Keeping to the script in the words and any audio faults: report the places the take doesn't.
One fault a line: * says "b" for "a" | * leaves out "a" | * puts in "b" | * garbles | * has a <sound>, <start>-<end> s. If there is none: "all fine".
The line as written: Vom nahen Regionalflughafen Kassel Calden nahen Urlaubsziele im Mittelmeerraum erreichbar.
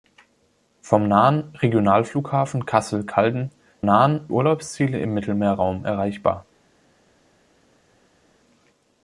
all fine